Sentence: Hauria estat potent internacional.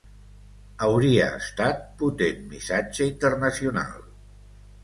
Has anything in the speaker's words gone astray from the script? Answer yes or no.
yes